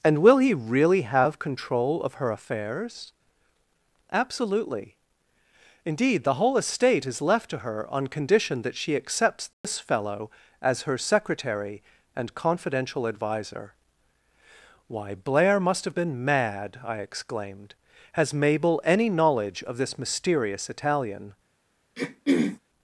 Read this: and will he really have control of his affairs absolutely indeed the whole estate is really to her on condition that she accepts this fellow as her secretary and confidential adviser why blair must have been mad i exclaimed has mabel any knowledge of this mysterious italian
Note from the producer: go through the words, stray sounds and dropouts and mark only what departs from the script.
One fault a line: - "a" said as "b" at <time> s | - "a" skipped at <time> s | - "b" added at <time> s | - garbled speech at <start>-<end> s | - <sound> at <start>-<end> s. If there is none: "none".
- "his" said as "her" at 2.1 s
- "really" said as "left" at 7.2 s
- dropout at 9.5-9.6 s
- throat clearing at 22.0-22.6 s